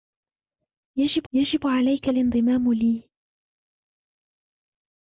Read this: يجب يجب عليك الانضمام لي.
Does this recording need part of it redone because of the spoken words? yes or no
no